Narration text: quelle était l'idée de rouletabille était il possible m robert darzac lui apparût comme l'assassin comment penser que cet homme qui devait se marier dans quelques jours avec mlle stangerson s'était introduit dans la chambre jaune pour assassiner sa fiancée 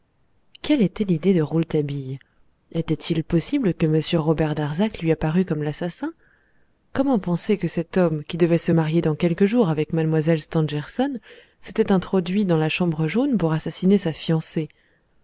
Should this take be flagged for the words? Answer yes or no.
yes